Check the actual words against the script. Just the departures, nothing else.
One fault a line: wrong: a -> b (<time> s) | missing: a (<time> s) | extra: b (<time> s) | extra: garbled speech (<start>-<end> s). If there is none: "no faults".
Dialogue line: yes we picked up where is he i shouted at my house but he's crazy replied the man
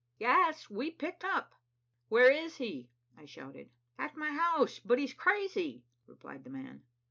no faults